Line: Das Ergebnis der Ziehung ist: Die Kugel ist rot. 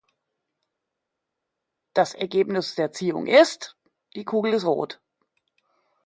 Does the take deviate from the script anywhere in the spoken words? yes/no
no